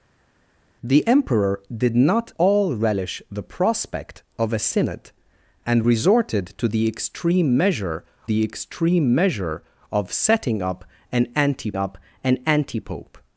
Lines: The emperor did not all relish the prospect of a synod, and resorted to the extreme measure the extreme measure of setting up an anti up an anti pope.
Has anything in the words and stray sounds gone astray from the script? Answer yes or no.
no